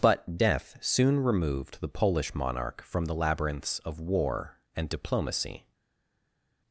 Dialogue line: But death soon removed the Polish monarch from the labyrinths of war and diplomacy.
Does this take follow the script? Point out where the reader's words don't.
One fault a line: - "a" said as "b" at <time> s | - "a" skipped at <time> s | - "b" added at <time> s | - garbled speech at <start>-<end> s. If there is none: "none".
none